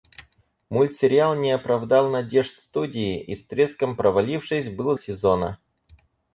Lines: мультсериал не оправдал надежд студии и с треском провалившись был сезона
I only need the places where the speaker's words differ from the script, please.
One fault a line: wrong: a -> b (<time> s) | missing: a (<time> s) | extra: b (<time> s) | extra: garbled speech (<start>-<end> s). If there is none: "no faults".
no faults